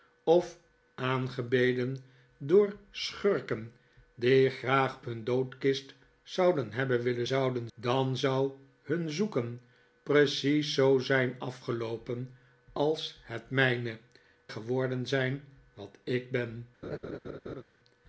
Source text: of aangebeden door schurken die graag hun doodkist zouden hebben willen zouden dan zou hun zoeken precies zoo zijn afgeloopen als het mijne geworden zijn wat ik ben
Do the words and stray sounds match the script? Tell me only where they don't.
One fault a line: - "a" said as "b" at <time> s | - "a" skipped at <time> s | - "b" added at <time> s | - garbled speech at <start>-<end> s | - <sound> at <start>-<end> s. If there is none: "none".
- laugh at 16.8-17.6 s